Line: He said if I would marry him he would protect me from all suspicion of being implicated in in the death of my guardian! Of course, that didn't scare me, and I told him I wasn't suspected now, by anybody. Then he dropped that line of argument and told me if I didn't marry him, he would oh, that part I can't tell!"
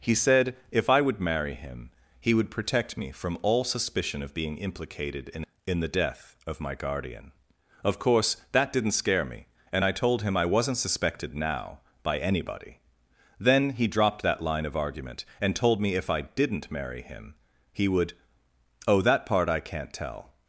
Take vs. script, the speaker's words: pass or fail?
pass